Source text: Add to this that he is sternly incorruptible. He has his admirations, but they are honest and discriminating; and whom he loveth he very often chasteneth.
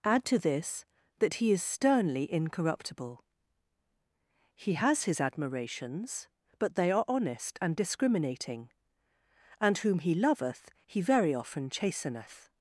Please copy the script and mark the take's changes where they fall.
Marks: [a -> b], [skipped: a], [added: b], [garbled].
Add to this that he is sternly incorruptible. He has his admirations, but they are honest and discriminating; and whom he loveth he very often chasteneth.